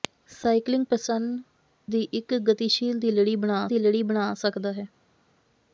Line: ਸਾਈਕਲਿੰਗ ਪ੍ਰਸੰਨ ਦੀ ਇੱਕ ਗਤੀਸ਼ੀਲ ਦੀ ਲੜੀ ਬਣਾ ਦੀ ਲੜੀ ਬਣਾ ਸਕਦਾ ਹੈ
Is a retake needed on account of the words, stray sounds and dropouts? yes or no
no